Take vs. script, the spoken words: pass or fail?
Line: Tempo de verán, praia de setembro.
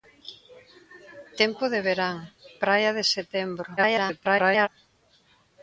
fail